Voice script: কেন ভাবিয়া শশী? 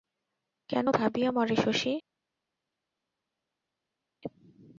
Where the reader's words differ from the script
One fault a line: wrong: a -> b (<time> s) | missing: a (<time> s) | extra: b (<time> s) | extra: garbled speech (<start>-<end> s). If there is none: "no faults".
extra: মরে (1.3 s)